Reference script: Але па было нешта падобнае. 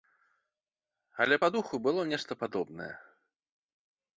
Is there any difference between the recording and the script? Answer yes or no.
yes